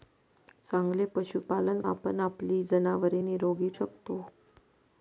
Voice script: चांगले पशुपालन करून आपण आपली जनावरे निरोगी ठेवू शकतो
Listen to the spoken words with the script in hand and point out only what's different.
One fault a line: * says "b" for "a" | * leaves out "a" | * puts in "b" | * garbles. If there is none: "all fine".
* leaves out "करून"
* leaves out "ठेवू"